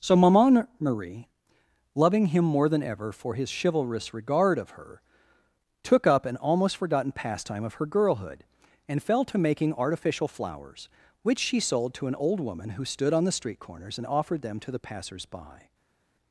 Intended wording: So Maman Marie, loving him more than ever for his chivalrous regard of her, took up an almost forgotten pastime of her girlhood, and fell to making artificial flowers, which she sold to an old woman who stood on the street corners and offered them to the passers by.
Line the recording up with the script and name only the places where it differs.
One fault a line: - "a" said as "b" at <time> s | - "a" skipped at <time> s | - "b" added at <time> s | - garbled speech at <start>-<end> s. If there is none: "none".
none